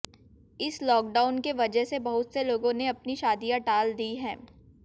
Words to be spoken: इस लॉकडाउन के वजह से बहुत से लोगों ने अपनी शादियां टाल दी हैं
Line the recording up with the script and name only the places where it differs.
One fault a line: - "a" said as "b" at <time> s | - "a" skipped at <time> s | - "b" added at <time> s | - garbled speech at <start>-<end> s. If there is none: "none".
none